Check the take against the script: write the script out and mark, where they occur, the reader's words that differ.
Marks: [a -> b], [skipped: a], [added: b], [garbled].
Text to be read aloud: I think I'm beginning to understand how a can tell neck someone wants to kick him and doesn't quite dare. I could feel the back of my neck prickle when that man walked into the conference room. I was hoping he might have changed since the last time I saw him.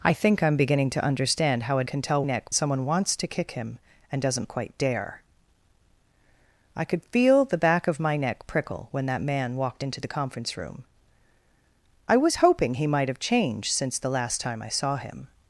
I think I'm beginning to understand how a can tell neck someone wants to kick him and doesn't quite dare. I could feel the back of my neck prickle when that man walked into the conference room. I was hoping he might have changed since the last time I saw him.